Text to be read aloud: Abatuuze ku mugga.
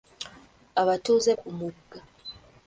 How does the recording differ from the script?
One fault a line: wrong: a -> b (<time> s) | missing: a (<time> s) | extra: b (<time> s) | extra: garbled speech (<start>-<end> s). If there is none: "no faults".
no faults